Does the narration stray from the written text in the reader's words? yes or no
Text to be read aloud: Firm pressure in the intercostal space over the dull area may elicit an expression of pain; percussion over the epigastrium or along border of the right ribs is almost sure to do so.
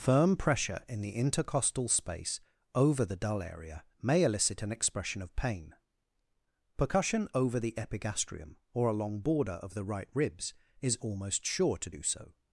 no